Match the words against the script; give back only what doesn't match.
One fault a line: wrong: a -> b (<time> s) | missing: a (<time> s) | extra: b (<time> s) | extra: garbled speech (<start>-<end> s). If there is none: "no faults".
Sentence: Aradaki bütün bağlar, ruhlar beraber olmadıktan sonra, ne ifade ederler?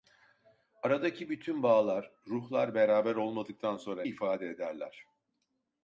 missing: ne (4.0 s)